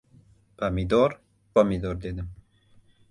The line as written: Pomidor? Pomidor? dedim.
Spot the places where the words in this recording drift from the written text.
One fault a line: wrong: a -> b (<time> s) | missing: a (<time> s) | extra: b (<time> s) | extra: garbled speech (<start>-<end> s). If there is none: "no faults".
no faults